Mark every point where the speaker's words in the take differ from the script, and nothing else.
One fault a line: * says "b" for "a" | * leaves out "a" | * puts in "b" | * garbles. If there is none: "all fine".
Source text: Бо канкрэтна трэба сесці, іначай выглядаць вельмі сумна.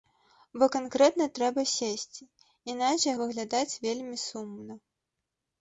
all fine